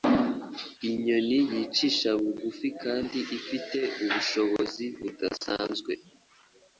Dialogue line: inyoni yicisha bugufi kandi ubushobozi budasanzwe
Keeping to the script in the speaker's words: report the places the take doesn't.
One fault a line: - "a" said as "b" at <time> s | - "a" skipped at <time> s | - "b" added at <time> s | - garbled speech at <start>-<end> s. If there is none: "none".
- "ifite" added at 3.4 s